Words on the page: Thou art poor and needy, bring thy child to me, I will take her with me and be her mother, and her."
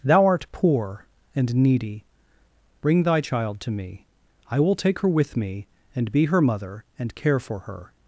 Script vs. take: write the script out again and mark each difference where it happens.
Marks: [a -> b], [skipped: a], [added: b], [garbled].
Thou art poor and needy, bring thy child to me, I will take her with me and be her mother, and [added: care for] her."